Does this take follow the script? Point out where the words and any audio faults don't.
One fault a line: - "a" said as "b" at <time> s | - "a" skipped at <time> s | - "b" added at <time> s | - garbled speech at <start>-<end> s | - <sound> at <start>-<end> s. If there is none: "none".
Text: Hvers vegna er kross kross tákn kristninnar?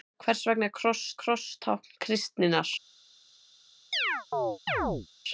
- chirp at 3.9-5.1 s